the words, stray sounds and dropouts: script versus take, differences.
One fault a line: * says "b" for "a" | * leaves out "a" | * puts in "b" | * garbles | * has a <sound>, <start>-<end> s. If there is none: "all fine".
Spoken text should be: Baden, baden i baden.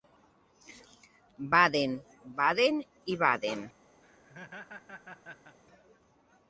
* has a laugh, 4.0-5.6 s